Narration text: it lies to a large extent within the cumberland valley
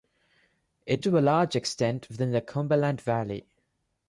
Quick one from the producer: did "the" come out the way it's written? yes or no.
yes